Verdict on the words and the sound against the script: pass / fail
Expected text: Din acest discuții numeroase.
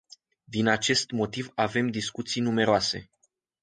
fail